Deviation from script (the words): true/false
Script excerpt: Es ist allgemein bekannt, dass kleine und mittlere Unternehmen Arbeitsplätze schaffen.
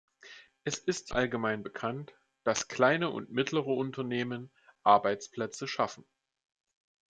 false